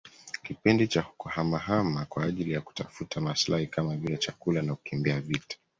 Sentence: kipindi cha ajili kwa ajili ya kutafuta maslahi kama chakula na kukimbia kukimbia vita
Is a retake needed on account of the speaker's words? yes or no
yes